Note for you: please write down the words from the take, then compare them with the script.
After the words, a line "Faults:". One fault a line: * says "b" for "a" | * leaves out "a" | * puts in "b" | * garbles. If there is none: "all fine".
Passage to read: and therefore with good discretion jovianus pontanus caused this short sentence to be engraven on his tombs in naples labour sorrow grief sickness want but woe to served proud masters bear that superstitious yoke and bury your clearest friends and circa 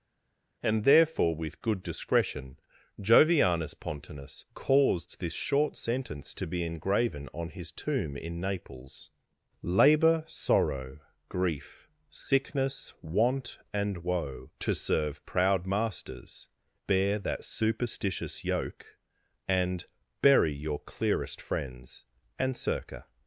and therefore with good discretion jovianus pontanus caused this short sentence to be engraven on his tomb in naples labour sorrow grief sickness want and woe to serve proud masters bear that superstitious yoke and bury your clearest friends and circa
Faults:
* says "tomb" for "tombs"
* says "and" for "but"
* says "serve" for "served"